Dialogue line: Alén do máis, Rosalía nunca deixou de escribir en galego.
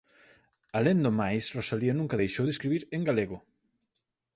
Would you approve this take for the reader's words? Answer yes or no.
yes